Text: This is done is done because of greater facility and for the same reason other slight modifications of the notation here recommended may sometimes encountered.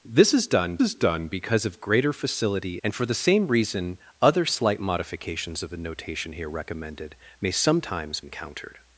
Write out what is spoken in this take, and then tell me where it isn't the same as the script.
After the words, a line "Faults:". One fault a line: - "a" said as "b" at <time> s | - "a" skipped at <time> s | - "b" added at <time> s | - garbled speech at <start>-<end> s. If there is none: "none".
This is done is done because of greater facility and for the same reason other slight modifications of the notation here recommended may sometimes encountered.
Faults:
none